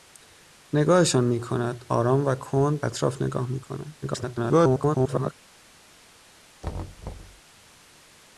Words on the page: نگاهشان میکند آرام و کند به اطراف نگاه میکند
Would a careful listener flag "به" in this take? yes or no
yes